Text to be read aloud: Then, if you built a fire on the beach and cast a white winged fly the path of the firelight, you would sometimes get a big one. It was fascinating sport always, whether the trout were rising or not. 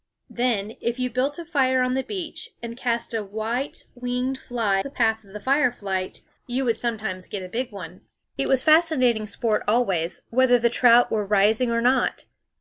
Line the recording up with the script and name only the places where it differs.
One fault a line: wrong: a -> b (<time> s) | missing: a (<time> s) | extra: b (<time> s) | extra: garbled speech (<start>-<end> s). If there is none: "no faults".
no faults